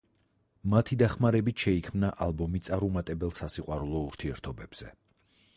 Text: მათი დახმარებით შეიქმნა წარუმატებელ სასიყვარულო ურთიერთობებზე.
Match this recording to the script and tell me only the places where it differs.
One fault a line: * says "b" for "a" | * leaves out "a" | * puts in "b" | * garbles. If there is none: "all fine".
* puts in "ალბომი"